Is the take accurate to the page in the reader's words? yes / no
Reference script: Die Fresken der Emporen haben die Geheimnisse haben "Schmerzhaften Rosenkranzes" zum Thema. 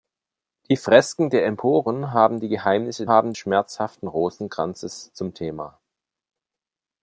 yes